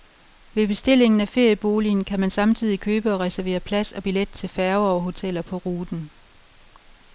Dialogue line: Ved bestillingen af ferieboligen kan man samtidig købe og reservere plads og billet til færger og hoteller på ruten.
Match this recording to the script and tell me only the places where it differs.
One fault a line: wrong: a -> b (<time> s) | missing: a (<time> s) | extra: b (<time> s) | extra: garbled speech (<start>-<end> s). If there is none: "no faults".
no faults